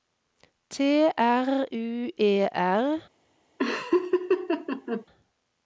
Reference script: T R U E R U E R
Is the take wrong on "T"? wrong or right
right